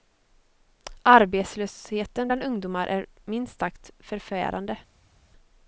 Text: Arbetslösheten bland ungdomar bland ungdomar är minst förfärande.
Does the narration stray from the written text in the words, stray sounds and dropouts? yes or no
yes